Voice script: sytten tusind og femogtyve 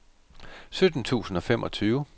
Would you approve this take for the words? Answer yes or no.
yes